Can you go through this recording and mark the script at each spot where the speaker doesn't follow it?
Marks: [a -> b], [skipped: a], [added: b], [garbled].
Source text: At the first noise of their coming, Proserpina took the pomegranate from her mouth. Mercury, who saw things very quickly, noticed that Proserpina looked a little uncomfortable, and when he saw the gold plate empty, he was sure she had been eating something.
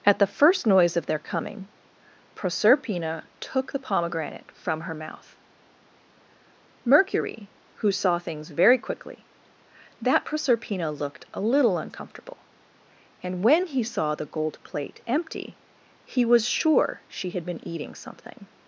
At the first noise of their coming, Proserpina took the pomegranate from her mouth. Mercury, who saw things very quickly, [skipped: noticed] that Proserpina looked a little uncomfortable, and when he saw the gold plate empty, he was sure she had been eating something.